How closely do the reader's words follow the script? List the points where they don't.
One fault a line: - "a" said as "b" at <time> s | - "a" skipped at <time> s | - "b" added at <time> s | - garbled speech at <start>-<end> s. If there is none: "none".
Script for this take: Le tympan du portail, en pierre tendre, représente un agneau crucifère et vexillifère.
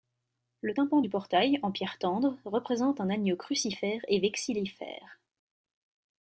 none